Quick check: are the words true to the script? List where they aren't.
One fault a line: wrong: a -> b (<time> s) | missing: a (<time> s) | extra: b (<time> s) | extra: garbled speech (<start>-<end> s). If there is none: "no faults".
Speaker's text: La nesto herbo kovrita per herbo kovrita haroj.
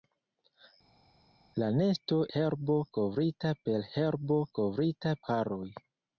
no faults